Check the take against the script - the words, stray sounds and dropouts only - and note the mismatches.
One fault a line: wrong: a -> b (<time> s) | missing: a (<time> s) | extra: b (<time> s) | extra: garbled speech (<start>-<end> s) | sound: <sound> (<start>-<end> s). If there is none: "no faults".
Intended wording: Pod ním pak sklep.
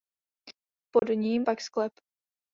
sound: dropout (1.0-1.0 s)